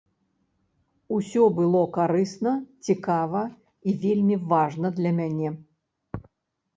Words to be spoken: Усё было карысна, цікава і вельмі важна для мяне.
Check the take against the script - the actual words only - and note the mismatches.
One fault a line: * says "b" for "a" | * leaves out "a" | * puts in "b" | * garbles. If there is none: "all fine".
all fine